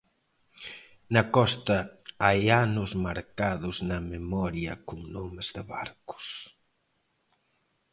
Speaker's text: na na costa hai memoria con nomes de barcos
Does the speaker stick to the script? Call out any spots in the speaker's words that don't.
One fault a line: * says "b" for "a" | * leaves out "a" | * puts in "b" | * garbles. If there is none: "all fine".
* leaves out "na"
* puts in "anos marcados na"